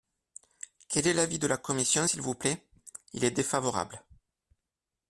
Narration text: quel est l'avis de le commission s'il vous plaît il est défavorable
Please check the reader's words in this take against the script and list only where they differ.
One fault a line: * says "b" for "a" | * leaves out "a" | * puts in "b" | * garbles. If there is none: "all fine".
* says "la" for "le"